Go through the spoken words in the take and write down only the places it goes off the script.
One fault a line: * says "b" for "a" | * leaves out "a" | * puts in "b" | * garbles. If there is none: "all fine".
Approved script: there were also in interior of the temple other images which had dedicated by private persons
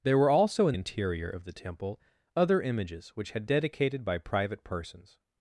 all fine